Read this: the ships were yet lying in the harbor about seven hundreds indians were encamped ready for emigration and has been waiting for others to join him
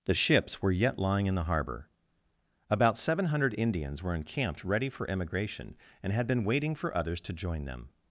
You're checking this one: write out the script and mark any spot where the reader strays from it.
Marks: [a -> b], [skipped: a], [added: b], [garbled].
the ships were yet lying in the harbor about seven [hundreds -> hundred] indians were encamped ready for emigration and [has -> had] been waiting for others to join [him -> them]